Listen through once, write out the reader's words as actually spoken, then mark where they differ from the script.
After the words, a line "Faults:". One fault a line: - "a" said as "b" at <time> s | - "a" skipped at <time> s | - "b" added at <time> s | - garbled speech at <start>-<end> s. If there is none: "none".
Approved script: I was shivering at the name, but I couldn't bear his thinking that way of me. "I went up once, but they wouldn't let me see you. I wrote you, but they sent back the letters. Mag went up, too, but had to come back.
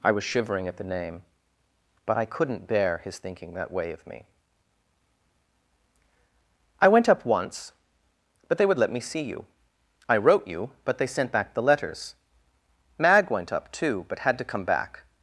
I was shivering at the name, but I couldn't bear his thinking that way of me. "I went up once, but they would let me see you. I wrote you, but they sent back the letters. Mag went up, too, but had to come back.
Faults:
- "wouldn't" said as "would" at 8.7 s